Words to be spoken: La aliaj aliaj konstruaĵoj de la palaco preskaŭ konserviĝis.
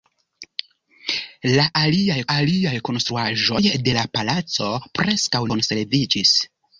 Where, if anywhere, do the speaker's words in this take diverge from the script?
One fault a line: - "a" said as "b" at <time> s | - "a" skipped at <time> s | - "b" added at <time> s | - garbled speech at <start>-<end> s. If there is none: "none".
none